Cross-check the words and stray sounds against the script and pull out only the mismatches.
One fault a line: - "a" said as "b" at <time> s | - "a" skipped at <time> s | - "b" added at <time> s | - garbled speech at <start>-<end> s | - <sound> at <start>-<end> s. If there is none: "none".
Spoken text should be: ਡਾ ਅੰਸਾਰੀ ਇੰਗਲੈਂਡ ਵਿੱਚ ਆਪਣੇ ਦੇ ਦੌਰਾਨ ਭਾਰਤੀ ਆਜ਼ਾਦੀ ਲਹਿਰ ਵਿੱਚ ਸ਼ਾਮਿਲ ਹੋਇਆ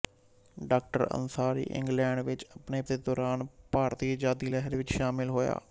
none